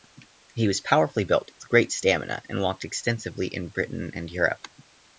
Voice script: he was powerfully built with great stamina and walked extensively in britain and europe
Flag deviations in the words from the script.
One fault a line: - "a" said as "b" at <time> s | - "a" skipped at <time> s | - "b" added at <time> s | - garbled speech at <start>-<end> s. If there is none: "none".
none